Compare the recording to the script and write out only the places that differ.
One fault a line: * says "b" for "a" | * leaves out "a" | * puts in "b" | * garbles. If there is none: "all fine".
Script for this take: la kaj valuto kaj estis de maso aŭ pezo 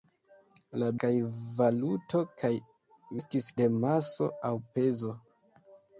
all fine